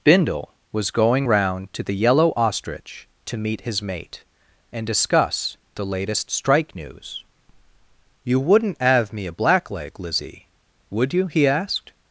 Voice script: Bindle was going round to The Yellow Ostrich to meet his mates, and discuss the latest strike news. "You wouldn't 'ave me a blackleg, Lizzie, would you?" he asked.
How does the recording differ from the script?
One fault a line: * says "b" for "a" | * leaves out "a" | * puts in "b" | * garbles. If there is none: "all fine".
* says "mate" for "mates"